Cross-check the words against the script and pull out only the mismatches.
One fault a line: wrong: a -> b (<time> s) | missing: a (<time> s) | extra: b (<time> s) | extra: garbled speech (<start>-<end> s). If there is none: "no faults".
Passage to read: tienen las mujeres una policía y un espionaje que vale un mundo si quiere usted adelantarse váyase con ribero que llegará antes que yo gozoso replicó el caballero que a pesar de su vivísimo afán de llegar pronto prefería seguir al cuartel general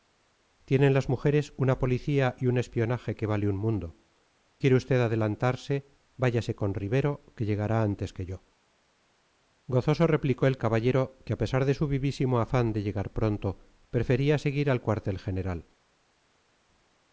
missing: si (4.0 s)